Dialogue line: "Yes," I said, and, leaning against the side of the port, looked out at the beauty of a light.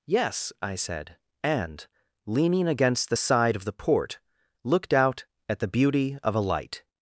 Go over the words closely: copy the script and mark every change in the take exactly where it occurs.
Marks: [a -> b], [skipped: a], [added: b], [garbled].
"Yes," I said, and, leaning against the side of the port, looked out at the beauty of a light.